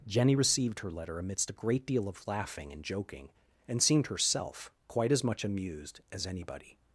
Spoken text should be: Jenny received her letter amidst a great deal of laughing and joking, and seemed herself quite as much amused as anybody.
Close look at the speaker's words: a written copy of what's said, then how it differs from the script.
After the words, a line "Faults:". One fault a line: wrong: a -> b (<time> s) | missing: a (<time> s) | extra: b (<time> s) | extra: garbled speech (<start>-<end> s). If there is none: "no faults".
Jenny received her letter amidst a great deal of laughing and joking, and seemed herself quite as much amused as anybody.
Faults:
no faults